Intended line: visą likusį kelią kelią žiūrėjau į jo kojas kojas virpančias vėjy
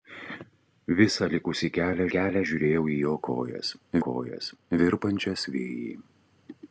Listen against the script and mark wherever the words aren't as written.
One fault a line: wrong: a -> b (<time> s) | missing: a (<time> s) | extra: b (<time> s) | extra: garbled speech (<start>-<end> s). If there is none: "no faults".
no faults